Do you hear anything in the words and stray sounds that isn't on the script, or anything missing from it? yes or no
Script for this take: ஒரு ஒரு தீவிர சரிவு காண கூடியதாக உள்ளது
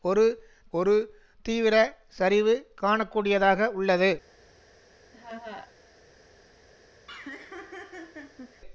yes